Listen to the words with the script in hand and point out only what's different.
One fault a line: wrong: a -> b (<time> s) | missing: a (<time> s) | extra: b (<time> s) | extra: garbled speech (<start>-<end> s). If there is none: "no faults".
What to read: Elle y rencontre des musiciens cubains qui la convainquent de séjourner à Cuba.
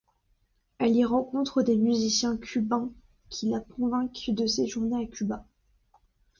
no faults